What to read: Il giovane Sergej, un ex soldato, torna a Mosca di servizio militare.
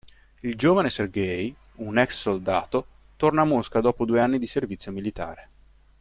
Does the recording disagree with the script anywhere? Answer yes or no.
yes